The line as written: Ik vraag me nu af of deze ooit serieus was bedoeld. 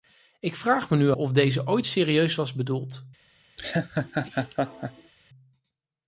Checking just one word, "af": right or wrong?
wrong